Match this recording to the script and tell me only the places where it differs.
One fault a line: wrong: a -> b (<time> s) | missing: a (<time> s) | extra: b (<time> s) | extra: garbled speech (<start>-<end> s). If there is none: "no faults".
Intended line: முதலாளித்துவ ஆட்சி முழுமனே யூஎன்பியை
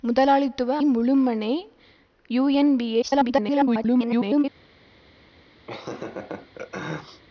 missing: ஆட்சி (0.7 s)
extra: garbled speech (3.0-4.4 s)